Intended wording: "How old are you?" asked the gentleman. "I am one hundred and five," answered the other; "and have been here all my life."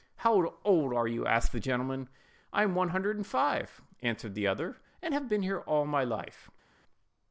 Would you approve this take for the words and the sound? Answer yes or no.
yes